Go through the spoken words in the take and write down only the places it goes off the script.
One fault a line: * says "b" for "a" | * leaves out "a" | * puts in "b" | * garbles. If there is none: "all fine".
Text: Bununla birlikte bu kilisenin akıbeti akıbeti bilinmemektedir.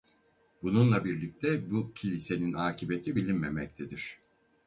* leaves out "akıbeti"